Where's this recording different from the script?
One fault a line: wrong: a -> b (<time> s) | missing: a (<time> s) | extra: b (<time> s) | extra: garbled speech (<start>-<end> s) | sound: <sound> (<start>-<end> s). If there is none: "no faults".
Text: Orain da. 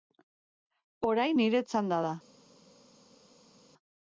extra: nire txanda (1.4 s)